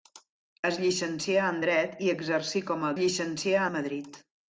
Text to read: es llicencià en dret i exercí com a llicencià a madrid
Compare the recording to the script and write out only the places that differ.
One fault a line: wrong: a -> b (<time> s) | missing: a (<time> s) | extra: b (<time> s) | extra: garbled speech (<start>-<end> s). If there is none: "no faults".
no faults